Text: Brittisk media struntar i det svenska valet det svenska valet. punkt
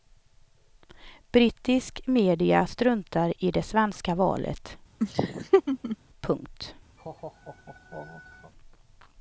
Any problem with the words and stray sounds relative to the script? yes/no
yes